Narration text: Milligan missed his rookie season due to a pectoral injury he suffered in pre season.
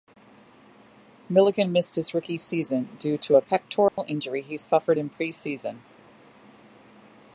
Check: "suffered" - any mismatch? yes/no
no